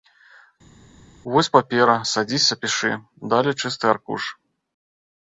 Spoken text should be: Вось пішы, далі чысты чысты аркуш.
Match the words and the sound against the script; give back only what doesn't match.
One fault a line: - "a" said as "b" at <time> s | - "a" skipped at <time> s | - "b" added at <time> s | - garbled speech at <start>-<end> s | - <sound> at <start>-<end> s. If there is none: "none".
- "папера садзіся" added at 1.5 s
- "чысты" skipped at 3.8 s